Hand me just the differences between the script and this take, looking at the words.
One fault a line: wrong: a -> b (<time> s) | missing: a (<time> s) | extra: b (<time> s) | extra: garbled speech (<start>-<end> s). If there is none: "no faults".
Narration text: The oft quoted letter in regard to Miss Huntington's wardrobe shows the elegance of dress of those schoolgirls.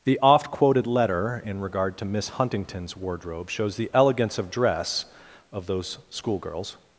no faults